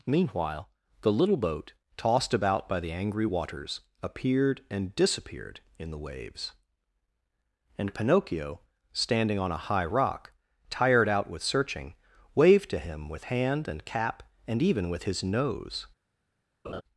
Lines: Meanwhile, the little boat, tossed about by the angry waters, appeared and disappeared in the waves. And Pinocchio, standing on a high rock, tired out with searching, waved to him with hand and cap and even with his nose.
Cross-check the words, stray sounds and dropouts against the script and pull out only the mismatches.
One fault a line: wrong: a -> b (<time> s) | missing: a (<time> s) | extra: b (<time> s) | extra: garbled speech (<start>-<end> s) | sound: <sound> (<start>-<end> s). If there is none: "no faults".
sound: laugh (16.6-16.8 s)